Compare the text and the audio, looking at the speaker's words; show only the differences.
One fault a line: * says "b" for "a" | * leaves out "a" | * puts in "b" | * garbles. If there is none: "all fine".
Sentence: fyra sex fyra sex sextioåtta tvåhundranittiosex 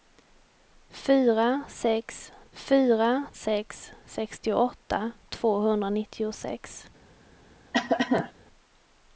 all fine